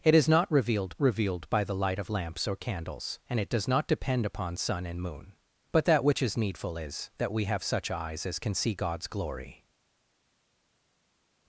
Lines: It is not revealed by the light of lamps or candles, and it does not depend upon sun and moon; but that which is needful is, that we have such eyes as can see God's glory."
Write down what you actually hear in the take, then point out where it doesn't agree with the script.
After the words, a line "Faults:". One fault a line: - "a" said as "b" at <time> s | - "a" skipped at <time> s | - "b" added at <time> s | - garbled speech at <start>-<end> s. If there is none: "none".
It is not revealed revealed by the light of lamps or candles, and it does not depend upon sun and moon; but that which is needful is, that we have such eyes as can see God's glory."
Faults:
- "revealed" added at 1.0 s